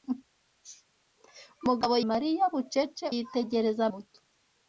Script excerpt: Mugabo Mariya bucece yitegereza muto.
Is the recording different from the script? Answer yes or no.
no